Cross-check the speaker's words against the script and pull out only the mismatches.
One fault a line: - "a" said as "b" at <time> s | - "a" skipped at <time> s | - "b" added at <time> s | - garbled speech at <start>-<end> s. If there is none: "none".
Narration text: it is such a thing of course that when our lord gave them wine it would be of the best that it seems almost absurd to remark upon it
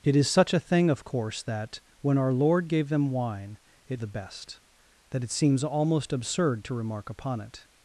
- "would be of" skipped at 4.0 s